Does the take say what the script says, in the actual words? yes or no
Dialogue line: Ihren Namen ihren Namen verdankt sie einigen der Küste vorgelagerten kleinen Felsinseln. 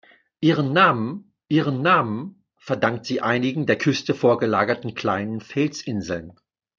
yes